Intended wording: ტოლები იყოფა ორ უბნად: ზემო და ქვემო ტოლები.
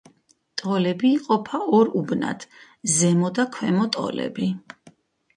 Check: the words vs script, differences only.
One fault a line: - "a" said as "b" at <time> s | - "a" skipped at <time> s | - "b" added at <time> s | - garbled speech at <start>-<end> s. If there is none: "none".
none